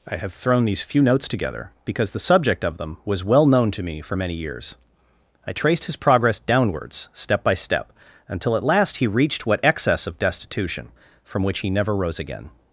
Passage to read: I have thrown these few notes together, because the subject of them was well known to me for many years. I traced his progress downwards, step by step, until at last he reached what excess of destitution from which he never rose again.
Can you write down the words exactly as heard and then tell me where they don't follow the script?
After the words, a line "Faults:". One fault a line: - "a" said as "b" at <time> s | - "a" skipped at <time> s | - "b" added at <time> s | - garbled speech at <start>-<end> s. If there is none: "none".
I have thrown these few notes together, because the subject of them was well known to me for many years. I traced his progress downwards, step by step, until at last he reached what excess of destitution from which he never rose again.
Faults:
none